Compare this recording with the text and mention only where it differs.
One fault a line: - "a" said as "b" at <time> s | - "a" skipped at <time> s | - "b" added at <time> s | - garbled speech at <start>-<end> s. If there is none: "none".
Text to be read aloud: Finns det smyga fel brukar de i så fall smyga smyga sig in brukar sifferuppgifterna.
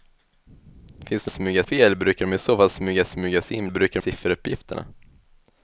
none